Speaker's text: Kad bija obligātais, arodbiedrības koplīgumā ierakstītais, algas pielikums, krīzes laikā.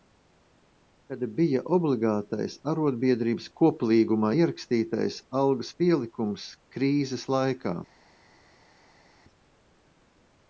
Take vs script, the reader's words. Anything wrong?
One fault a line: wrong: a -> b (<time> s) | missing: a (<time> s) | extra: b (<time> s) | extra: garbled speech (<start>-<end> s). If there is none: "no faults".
no faults